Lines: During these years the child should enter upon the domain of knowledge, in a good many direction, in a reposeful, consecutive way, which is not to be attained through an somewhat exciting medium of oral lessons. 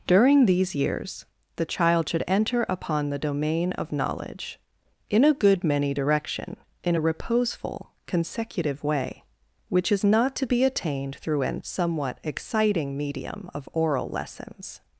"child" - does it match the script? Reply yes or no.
yes